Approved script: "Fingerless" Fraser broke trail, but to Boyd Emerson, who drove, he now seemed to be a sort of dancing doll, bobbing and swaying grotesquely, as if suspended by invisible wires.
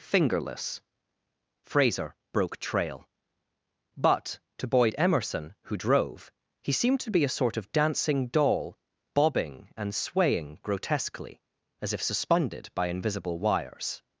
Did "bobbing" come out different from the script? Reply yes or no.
no